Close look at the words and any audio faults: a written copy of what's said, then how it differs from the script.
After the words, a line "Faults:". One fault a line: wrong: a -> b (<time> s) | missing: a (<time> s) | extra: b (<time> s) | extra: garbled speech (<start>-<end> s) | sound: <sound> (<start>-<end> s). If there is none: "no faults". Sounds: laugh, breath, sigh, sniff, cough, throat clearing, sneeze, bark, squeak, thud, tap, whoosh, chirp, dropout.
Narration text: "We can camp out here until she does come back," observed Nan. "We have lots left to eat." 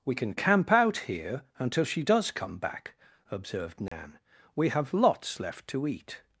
"We can camp out here until she does come back," observed Nan. "We have lots left to eat."
Faults:
sound: dropout (3.9-3.9 s)